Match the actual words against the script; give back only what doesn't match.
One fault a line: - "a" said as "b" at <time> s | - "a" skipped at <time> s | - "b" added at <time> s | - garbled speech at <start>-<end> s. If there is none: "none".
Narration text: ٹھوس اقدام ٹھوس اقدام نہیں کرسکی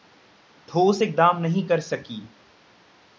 - "ٹھوس اقدام" skipped at 1.4 s